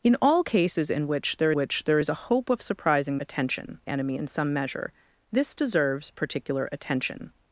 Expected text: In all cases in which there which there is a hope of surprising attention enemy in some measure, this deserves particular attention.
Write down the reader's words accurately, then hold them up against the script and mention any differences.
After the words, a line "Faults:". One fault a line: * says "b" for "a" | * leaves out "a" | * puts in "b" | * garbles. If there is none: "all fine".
In all cases in which there which there is a hope of surprising attention enemy in some measure, this deserves particular attention.
Faults:
all fine